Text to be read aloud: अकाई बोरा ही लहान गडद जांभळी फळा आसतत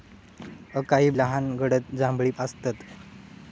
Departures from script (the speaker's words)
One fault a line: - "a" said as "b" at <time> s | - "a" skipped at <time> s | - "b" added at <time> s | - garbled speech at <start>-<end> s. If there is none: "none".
- "बोरा ही" skipped at 1.1 s
- "फळा" skipped at 2.3 s